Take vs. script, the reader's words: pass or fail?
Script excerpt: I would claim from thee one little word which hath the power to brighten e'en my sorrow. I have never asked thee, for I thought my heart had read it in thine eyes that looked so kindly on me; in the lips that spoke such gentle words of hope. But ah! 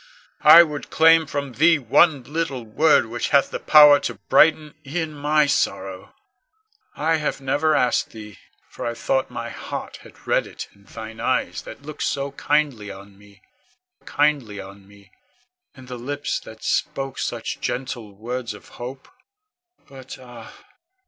fail